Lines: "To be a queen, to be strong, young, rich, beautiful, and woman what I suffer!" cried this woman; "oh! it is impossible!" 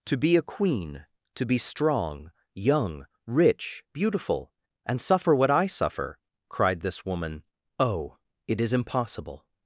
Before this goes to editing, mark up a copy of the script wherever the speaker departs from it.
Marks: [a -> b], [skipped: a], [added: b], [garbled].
"To be a queen, to be strong, young, rich, beautiful, and [woman -> suffer] what I suffer!" cried this woman; "oh! it is impossible!"